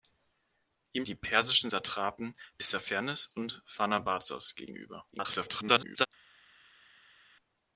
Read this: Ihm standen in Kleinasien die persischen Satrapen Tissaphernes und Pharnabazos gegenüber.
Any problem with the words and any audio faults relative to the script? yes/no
yes